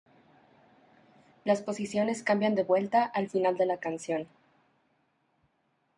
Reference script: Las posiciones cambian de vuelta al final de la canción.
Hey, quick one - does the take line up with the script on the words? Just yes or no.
yes